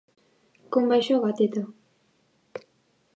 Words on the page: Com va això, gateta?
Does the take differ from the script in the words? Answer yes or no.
no